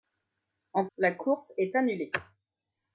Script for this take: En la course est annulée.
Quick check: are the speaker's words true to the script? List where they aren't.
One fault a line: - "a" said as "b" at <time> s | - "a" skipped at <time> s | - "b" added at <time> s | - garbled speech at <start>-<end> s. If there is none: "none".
none